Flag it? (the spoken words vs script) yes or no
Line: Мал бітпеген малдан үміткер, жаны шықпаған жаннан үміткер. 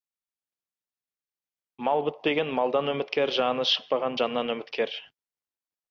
no